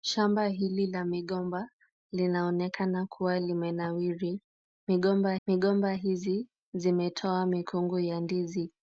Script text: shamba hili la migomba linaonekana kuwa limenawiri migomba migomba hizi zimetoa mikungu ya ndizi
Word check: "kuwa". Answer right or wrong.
right